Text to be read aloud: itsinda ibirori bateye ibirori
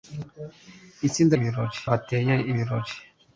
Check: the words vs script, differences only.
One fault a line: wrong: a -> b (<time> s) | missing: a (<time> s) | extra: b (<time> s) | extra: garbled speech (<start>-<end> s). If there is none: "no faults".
no faults